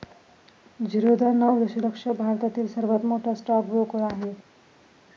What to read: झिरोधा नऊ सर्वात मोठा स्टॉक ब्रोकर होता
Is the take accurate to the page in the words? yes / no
no